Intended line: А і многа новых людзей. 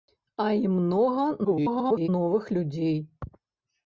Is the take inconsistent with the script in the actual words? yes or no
yes